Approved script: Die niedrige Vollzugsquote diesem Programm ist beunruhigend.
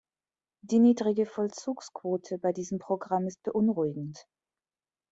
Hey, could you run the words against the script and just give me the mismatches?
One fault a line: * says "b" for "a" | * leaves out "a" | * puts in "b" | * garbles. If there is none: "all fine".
* puts in "bei"